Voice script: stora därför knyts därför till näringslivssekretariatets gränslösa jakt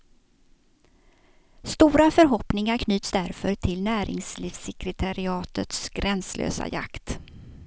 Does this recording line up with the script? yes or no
no